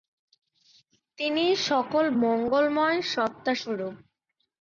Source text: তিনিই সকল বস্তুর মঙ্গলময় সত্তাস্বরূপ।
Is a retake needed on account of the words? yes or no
yes